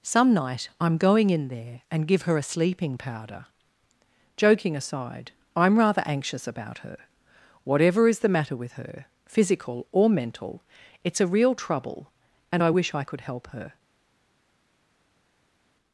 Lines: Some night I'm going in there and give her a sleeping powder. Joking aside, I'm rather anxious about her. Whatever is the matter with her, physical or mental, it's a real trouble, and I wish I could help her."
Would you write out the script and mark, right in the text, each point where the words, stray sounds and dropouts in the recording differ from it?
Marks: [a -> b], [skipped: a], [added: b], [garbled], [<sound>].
Some night I'm going in there and give her a sleeping powder. Joking aside, I'm rather anxious about her. Whatever is the matter with her, physical or mental, it's a real trouble, and I wish I could help her."